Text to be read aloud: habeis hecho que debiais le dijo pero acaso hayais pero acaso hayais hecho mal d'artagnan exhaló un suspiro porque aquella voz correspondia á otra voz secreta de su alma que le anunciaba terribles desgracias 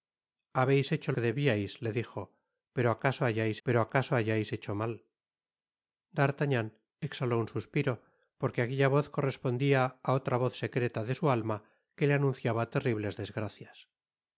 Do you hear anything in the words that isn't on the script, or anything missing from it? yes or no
no